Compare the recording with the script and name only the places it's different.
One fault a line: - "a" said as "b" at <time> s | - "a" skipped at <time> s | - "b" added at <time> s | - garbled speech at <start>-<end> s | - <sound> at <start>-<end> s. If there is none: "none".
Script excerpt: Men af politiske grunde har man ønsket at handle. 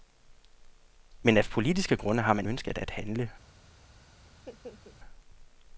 - laugh at 4.3-5.0 s